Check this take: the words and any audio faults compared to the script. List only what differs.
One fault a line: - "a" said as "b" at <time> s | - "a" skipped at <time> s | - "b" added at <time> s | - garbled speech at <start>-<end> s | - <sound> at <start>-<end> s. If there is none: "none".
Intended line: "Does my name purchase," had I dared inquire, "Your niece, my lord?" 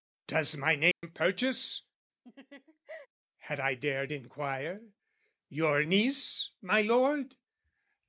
- dropout at 0.9-1.0 s
- laugh at 2.2-3.1 s